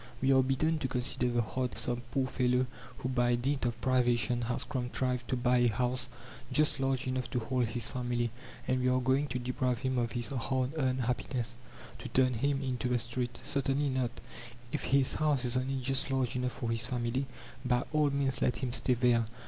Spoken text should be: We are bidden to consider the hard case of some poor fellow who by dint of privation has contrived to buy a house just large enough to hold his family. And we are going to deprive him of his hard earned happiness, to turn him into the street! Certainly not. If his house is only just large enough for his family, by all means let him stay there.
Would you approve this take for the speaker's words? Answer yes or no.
no